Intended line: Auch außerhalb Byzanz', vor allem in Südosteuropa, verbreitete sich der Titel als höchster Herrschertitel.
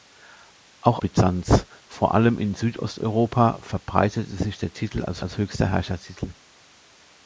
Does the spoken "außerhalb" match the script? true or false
false